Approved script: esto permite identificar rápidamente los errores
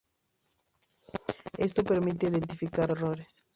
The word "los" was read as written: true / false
false